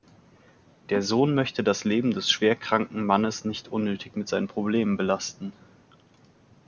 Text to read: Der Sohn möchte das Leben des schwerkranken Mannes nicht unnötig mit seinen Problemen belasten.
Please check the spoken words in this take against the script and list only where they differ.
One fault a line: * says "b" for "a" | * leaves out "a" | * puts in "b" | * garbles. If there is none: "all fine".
all fine